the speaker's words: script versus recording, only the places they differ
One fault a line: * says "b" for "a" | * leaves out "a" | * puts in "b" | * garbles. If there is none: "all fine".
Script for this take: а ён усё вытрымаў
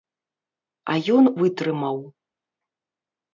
* leaves out "усё"